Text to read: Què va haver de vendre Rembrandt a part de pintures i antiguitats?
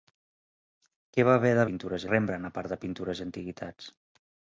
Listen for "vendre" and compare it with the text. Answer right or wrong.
wrong